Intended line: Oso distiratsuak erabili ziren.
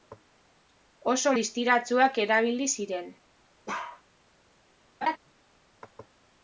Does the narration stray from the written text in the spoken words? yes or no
no